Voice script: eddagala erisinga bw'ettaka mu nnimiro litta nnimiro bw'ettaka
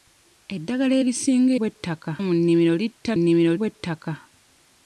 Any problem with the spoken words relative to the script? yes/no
no